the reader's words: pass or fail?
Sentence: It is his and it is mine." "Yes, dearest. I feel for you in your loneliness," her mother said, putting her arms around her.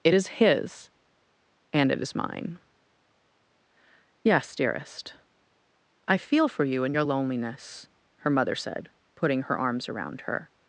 pass